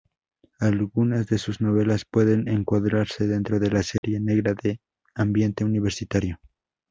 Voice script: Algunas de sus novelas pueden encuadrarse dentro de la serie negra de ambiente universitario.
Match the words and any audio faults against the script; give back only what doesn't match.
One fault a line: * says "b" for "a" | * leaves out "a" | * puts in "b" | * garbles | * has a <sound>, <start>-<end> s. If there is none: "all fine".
* has a dropout, 4.0-4.0 s